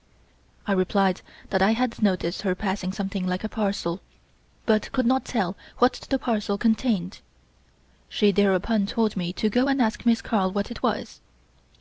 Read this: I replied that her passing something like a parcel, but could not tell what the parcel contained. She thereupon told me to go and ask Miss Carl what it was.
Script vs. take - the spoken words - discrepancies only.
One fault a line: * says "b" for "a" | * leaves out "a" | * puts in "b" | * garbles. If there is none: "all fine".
* puts in "I had noticed"